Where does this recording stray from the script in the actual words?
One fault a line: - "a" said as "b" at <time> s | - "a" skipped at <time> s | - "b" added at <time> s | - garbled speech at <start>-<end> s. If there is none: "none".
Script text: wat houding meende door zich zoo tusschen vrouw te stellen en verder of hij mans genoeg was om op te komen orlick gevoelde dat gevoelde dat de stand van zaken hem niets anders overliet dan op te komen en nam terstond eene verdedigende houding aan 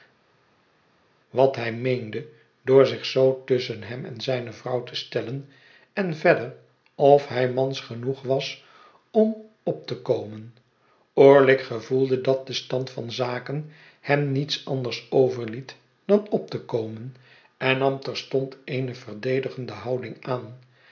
- "houding" said as "hij" at 1.6 s
- "hem en zijne" added at 3.8 s
- "gevoelde dat" skipped at 12.5 s